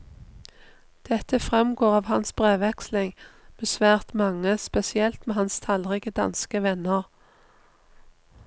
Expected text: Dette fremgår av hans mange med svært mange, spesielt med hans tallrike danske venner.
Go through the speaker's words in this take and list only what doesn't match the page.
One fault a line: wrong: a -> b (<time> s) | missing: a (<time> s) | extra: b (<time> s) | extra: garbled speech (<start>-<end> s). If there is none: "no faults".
wrong: mange -> brevveksling (2.3 s)